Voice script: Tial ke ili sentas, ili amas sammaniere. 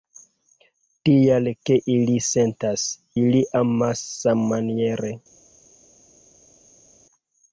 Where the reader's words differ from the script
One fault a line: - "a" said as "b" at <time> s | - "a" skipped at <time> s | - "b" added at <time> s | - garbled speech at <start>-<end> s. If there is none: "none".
none